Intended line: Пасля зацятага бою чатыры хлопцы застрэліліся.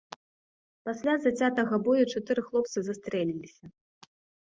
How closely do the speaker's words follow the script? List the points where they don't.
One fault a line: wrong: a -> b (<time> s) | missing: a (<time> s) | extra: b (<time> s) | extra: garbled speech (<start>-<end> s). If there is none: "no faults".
no faults